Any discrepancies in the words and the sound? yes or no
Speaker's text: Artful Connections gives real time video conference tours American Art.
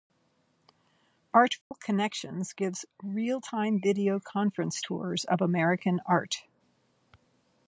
yes